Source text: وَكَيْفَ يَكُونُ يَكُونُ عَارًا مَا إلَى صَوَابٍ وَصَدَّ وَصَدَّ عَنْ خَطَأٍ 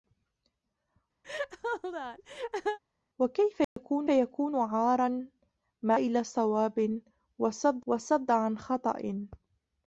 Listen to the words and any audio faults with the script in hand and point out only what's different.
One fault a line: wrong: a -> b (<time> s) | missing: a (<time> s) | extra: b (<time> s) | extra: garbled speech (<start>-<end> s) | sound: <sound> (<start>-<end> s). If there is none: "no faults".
sound: laugh (1.2-2.8 s)
sound: dropout (3.6-3.8 s)